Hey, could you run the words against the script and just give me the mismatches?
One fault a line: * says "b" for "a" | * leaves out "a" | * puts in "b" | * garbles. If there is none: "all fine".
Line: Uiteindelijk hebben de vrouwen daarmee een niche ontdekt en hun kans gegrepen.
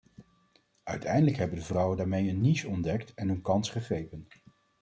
all fine